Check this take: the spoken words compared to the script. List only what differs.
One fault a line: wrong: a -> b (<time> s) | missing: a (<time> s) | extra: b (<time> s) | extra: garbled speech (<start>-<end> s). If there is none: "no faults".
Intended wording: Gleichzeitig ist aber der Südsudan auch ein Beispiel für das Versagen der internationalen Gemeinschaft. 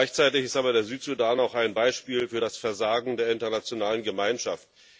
no faults